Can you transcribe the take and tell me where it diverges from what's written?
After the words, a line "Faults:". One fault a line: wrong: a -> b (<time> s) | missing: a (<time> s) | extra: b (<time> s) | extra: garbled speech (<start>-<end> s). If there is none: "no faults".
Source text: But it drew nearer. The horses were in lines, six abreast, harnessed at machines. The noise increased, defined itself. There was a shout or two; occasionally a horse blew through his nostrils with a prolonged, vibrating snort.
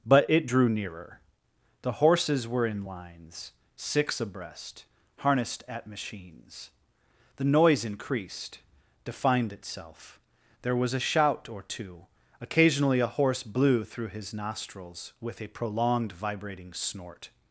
But it drew nearer. The horses were in lines, six abreast, harnessed at machines. The noise increased, defined itself. There was a shout or two; occasionally a horse blew through his nostrils with a prolonged, vibrating snort.
Faults:
no faults